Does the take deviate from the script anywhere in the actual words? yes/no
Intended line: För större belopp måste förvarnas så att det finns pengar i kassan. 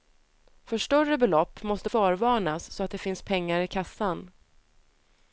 no